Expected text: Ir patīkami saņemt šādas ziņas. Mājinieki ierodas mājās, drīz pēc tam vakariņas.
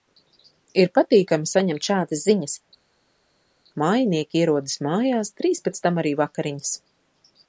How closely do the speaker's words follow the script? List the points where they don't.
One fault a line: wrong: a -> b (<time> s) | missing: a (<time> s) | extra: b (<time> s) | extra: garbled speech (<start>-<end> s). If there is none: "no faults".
extra: arī (6.0 s)